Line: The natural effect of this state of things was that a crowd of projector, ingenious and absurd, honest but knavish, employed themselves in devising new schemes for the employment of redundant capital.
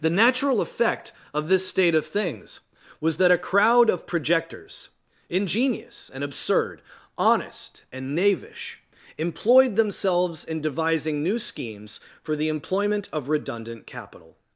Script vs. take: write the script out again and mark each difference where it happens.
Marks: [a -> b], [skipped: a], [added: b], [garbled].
The natural effect of this state of things was that a crowd of [projector, -> projectors] ingenious and absurd, honest [but -> and] knavish, employed themselves in devising new schemes for the employment of redundant capital.